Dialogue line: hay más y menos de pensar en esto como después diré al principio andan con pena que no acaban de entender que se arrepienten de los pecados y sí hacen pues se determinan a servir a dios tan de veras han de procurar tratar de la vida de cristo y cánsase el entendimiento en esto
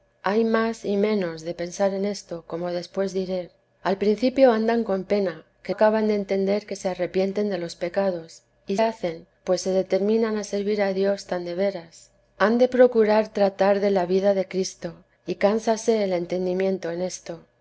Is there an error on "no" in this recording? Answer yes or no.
yes